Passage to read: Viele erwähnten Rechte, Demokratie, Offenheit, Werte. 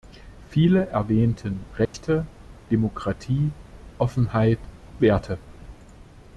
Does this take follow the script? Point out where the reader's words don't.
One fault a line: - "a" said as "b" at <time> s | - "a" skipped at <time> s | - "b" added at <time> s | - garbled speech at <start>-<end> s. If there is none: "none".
none